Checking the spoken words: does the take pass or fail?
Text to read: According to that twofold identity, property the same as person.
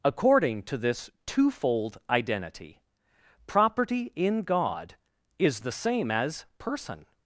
fail